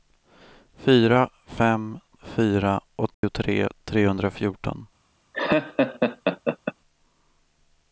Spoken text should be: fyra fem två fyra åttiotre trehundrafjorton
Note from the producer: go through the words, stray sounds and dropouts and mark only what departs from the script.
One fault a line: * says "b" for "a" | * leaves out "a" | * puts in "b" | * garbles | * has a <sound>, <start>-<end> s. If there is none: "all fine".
* leaves out "två"
* has a dropout, 3.1-3.2 s
* has a laugh, 5.3-6.7 s